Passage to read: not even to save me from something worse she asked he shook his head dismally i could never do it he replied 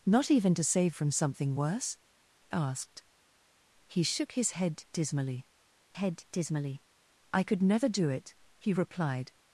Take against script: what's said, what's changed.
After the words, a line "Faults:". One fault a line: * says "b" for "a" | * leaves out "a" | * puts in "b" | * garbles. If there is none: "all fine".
not even to save from something worse asked he shook his head dismally head dismally i could never do it he replied
Faults:
* leaves out "me"
* leaves out "she"
* puts in "head dismally"